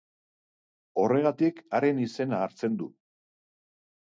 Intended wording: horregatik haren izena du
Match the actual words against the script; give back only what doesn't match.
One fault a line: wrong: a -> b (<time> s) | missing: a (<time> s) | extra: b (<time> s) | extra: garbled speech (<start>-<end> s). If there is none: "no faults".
extra: hartzen (2.5 s)